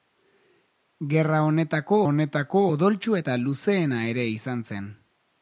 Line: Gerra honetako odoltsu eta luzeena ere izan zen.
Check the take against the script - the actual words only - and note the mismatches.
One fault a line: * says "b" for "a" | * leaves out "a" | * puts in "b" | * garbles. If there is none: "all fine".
* puts in "honetako"